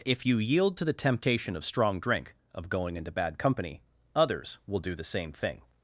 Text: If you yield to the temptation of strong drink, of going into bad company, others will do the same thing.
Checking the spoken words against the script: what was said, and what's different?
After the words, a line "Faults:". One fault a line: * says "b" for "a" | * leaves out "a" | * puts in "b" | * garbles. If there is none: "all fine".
If you yield to the temptation of strong drink, of going into bad company, others will do the same thing.
Faults:
all fine